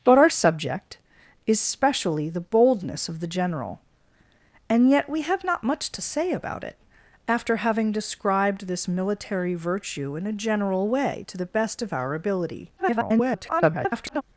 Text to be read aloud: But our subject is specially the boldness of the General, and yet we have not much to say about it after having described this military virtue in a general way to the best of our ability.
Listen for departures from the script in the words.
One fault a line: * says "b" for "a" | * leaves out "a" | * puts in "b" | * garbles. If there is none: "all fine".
* garbles